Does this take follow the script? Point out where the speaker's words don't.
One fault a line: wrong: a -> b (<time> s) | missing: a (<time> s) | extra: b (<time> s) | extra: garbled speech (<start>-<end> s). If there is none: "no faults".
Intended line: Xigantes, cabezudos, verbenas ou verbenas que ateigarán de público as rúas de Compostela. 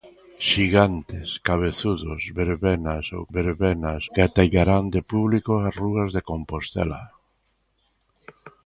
no faults